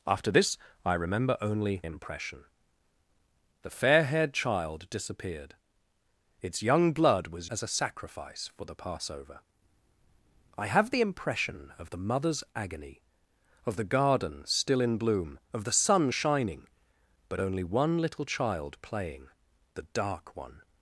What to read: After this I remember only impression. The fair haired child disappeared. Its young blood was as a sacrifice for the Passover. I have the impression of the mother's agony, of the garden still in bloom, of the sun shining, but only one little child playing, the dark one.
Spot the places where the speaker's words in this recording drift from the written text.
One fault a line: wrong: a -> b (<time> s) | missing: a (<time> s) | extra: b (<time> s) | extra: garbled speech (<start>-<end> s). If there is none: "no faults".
no faults